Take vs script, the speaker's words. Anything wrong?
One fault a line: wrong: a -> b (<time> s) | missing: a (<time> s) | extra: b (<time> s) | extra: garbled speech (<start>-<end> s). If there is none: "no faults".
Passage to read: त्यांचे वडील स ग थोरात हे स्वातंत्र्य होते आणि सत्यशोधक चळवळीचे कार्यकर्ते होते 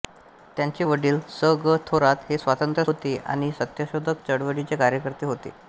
no faults